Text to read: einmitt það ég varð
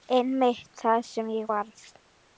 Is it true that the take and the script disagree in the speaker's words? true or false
true